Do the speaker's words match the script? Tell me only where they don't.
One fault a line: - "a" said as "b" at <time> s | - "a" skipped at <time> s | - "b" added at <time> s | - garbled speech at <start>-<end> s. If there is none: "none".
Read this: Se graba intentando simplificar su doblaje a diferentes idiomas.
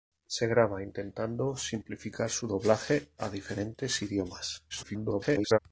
- garbled speech at 4.7-5.6 s